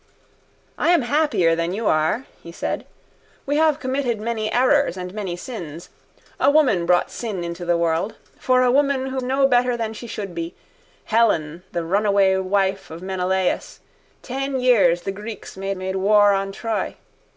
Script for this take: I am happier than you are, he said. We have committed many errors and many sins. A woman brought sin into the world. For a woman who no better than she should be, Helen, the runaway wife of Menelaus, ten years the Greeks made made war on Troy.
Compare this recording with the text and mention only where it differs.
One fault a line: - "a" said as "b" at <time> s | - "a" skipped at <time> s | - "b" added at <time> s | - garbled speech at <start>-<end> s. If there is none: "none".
none